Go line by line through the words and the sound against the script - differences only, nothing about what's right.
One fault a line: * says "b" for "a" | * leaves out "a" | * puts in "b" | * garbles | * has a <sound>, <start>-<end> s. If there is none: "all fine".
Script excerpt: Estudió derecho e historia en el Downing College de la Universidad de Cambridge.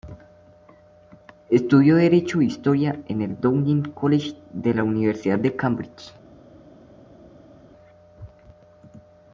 all fine